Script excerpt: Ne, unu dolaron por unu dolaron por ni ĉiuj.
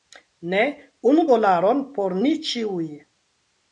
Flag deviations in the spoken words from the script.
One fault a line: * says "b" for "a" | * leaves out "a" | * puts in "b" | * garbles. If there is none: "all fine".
* leaves out "unu dolaron por"